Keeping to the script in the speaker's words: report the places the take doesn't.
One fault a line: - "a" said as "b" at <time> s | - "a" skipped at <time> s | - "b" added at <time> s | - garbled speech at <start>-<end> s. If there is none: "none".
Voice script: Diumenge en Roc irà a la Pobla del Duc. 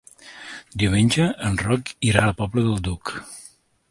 none